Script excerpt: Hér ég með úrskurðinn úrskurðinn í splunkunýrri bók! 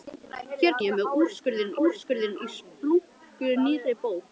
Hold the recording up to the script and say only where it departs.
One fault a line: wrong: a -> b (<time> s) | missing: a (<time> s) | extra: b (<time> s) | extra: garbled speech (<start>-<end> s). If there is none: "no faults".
no faults